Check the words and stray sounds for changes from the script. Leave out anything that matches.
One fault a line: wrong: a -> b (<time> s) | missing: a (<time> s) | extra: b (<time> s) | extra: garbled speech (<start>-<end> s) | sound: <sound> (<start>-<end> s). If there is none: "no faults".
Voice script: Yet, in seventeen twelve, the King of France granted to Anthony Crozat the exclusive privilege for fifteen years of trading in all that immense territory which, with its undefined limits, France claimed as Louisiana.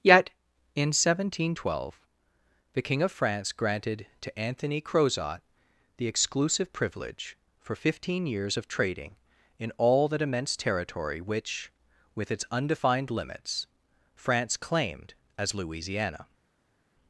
no faults